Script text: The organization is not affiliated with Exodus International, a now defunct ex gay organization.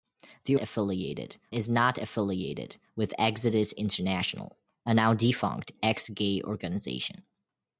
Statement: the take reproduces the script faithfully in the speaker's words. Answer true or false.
false